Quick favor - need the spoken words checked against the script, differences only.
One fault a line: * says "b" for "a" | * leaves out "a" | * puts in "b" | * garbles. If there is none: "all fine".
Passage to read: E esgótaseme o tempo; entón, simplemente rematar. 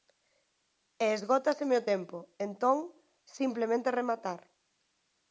all fine